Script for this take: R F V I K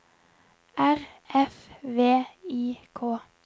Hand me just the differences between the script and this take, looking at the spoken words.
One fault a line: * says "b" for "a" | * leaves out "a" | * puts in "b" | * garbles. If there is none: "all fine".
all fine